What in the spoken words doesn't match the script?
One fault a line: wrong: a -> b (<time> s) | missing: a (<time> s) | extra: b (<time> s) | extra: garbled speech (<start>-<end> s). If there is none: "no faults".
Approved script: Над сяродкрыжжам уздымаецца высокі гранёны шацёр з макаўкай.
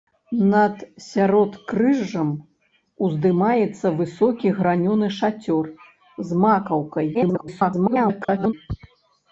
extra: garbled speech (7.1-8.5 s)